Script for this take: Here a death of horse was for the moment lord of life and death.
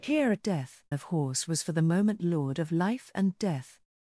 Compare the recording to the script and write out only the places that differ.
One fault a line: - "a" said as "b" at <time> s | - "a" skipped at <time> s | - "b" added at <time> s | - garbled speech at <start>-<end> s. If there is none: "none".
none